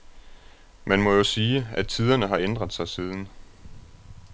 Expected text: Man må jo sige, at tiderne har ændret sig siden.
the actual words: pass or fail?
pass